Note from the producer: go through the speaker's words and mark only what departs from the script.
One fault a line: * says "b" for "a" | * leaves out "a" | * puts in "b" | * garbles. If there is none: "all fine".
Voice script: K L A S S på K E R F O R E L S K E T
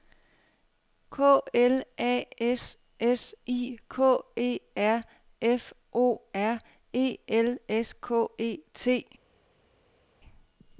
* says "I" for "på"